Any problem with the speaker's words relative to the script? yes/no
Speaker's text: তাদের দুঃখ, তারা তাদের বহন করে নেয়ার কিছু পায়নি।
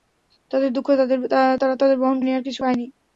yes